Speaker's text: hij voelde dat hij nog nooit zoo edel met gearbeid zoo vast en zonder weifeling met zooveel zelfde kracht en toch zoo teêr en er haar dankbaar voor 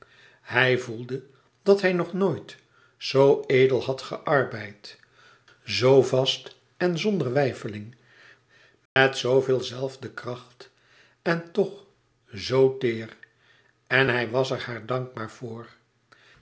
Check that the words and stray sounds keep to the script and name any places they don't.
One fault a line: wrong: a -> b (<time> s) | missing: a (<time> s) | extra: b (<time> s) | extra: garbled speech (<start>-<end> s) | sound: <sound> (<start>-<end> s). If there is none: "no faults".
wrong: met -> had (3.8 s)
sound: dropout (8.9-9.0 s)
extra: hij was (14.1 s)